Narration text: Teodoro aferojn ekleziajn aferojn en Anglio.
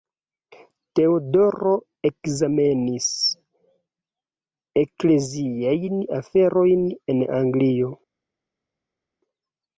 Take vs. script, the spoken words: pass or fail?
fail